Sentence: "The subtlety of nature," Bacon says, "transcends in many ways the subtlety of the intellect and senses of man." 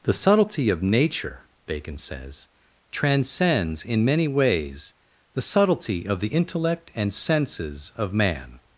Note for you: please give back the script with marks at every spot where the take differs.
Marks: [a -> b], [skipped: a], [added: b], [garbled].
"The subtlety of nature," Bacon says, "transcends in many ways the subtlety of the intellect and senses of man."